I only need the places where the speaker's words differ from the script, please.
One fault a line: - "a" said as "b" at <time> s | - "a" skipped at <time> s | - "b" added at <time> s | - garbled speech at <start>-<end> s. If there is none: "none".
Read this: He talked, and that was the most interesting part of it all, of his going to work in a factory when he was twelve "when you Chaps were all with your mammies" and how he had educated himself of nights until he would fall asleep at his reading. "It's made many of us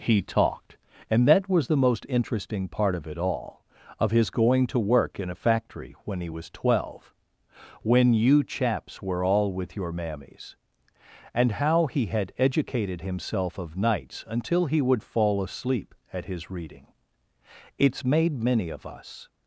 none